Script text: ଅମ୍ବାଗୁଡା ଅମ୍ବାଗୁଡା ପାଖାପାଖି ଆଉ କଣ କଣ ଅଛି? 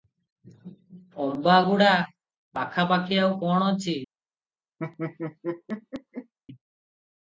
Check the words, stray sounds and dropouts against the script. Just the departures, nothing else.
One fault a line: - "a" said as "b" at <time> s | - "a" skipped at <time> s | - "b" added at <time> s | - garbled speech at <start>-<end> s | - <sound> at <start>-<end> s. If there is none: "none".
- "ଅମ୍ବାଗୁଡା" skipped at 1.9 s
- "କଣ" skipped at 3.7 s
- laugh at 4.8-6.3 s